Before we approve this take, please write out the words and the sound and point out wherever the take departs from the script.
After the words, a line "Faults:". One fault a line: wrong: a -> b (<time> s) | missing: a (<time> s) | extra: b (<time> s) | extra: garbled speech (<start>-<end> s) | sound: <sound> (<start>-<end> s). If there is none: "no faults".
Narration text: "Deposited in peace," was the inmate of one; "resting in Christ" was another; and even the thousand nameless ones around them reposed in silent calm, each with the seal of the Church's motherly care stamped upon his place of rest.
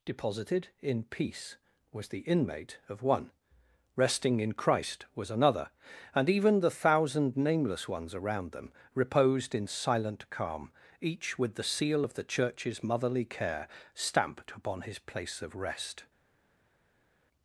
"Deposited in peace," was the inmate of one; "resting in Christ" was another; and even the thousand nameless ones around them reposed in silent calm, each with the seal of the Church's motherly care stamped upon his place of rest.
Faults:
no faults